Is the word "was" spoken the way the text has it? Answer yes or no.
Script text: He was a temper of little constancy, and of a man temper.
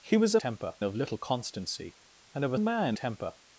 yes